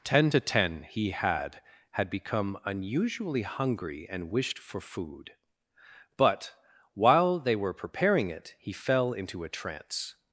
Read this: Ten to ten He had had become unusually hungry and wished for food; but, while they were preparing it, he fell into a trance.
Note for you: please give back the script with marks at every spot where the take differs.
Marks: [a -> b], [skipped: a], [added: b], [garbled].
Ten to ten He had had become unusually hungry and wished for food; but, while they were preparing it, he fell into a trance.